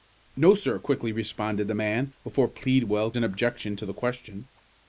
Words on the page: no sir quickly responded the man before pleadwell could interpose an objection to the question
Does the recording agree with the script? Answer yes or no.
no